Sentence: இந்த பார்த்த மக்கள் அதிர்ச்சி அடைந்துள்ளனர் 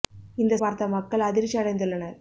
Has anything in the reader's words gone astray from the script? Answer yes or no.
no